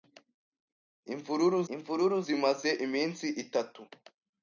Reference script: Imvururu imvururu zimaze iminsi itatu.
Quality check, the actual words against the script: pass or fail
pass